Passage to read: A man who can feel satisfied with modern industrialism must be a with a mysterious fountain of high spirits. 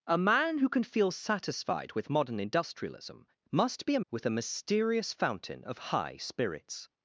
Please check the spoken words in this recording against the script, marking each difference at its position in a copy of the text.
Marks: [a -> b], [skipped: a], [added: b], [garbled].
A man who can feel satisfied with modern industrialism must be a with a mysterious fountain of high spirits.